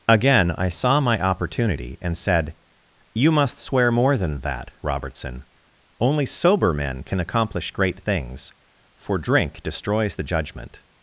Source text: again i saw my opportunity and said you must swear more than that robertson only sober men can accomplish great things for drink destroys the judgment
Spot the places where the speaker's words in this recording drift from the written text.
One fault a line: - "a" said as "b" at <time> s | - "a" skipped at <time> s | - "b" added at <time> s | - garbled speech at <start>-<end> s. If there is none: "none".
none